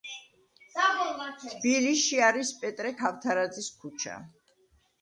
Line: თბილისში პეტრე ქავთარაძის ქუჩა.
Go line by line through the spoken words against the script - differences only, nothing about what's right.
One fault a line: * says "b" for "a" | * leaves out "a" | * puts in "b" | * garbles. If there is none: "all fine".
* puts in "არის"